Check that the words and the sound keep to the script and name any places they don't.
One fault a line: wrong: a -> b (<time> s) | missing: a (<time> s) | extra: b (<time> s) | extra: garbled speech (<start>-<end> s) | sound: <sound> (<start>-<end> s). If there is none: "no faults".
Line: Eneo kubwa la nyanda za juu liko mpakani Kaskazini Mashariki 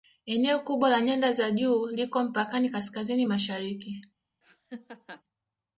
sound: laugh (4.4-5.2 s)